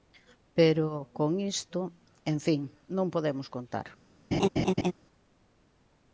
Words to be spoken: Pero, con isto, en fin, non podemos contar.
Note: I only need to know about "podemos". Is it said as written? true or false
true